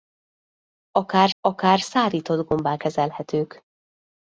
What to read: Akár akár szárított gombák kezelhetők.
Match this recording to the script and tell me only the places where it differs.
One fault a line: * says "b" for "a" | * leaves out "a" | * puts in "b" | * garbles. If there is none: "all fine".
all fine